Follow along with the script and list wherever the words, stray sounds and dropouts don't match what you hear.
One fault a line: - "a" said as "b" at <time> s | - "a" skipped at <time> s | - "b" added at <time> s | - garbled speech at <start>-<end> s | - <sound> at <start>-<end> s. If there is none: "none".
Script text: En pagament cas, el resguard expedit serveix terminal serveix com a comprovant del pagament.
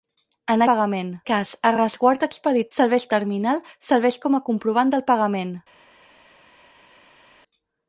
none